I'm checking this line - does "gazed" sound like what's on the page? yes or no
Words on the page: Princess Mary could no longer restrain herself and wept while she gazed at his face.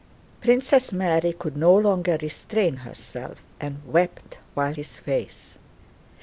no